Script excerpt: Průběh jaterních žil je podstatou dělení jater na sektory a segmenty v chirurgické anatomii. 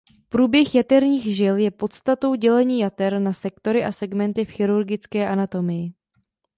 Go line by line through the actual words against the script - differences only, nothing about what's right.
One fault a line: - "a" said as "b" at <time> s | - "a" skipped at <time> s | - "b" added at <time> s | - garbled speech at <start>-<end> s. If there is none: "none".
none